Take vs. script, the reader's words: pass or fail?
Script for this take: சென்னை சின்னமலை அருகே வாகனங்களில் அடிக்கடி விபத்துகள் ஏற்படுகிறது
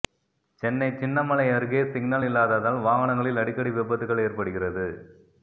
fail